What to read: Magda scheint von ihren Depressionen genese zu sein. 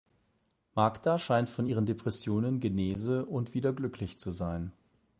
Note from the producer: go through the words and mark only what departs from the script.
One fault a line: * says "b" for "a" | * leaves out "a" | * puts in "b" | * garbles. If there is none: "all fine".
* puts in "und wieder glücklich"